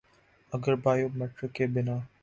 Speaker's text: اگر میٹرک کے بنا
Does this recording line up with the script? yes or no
no